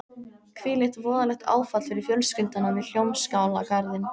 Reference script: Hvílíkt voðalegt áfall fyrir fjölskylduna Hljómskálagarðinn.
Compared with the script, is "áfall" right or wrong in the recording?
right